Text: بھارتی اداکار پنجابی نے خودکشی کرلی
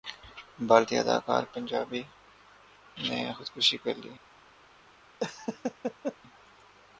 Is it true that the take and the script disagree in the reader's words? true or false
false